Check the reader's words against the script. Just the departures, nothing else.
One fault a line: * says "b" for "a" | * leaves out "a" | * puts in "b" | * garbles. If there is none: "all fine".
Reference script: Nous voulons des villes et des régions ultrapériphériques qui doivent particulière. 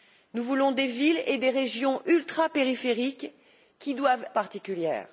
all fine